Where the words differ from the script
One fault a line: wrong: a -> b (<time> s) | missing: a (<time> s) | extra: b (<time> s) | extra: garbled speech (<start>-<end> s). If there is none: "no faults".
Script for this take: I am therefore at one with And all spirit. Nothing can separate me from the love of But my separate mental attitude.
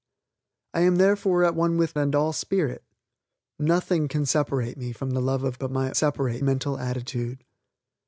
no faults